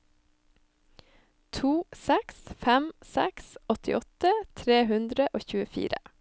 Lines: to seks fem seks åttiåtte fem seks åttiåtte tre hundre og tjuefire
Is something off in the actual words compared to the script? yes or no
yes